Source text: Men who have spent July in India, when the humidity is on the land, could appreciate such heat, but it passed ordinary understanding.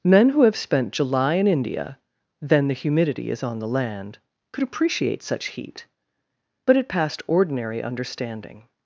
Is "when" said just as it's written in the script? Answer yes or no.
no